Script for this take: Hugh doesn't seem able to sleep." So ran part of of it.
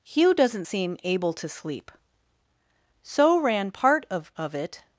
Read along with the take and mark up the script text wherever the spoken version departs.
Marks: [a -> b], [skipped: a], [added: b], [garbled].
Hugh doesn't seem able to sleep." So ran part of of it.